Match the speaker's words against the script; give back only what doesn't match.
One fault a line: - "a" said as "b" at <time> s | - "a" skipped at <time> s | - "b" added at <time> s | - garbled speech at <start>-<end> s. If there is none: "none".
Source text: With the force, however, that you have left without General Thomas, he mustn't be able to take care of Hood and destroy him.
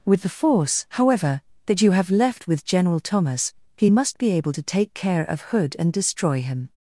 - "without" said as "with" at 2.5 s
- "mustn't" said as "must" at 3.9 s